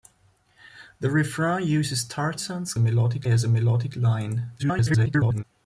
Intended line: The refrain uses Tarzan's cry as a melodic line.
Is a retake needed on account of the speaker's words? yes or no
yes